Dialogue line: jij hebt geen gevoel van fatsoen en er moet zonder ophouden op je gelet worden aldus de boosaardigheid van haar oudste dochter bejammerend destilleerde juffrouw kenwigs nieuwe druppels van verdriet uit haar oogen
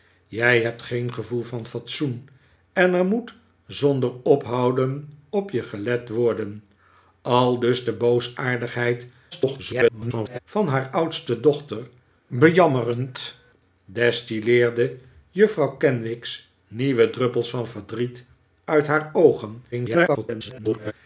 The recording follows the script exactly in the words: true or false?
false